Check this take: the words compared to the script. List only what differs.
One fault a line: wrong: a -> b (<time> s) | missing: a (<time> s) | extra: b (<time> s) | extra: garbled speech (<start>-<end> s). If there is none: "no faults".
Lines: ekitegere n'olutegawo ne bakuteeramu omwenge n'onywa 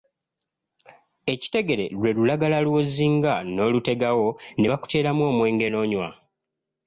extra: lwe lulagala lw'ozinga (2.0 s)